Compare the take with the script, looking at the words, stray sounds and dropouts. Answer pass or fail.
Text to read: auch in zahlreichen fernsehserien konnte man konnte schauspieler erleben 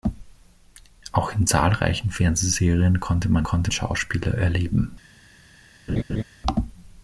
fail